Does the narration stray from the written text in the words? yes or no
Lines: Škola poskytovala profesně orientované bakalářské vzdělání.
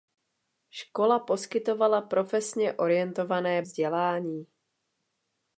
yes